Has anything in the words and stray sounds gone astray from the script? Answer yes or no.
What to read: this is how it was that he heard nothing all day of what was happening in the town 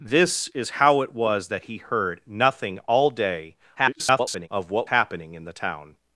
yes